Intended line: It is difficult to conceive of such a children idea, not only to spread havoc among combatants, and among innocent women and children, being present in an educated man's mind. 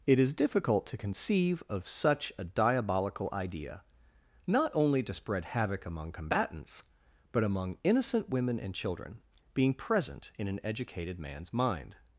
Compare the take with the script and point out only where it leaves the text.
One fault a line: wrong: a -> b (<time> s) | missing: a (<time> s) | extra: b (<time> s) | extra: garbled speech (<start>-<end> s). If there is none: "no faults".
wrong: children -> diabolical (2.4 s)
wrong: and -> but (7.3 s)